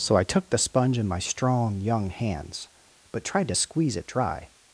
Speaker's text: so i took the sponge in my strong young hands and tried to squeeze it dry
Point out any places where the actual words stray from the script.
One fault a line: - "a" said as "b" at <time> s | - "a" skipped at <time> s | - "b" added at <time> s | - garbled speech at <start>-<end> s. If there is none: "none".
- "and" said as "but" at 3.1 s